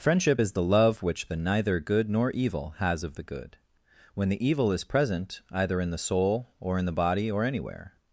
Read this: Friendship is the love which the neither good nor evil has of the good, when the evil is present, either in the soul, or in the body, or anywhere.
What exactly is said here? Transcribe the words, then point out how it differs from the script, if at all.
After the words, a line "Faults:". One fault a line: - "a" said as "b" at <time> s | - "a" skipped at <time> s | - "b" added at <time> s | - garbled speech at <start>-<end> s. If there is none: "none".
Friendship is the love which the neither good nor evil has of the good, when the evil is present, either in the soul, or in the body, or anywhere.
Faults:
none